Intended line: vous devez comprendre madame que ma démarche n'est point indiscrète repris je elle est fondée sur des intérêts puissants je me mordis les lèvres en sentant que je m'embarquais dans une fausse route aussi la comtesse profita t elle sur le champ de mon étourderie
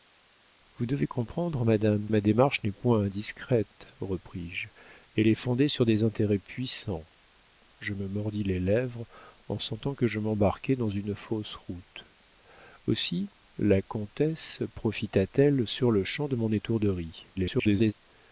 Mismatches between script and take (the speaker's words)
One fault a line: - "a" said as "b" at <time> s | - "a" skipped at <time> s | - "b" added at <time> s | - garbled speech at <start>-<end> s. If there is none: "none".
- "que" skipped at 2.1 s
- garbled speech at 17.3-17.9 s